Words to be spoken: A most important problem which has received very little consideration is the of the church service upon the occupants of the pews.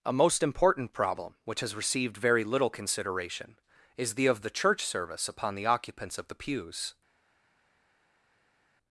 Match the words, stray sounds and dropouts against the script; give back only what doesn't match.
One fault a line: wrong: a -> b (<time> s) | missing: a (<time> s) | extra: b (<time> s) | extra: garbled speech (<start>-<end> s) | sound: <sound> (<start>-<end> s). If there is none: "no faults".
no faults